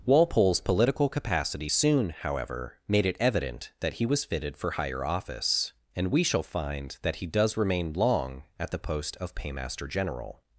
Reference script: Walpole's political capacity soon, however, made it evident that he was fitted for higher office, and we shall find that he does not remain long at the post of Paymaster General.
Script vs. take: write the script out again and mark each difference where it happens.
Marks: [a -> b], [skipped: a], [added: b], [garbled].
Walpole's political capacity soon, however, made it evident that he was fitted for higher office, and we shall find that he does [skipped: not] remain long at the post of Paymaster General.